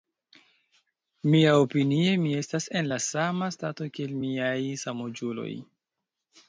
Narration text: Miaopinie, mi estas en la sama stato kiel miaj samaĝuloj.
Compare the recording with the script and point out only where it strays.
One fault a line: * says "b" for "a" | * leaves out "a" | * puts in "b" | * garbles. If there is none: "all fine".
all fine